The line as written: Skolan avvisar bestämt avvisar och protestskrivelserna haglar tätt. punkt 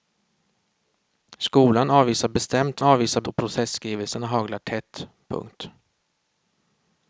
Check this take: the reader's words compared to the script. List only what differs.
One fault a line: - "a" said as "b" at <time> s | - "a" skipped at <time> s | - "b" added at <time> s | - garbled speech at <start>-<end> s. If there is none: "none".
none